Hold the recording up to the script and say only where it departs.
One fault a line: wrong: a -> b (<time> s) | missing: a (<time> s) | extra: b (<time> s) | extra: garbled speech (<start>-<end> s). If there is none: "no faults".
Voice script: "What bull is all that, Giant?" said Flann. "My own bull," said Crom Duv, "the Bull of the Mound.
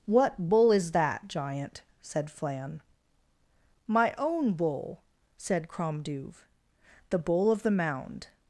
missing: all (0.9 s)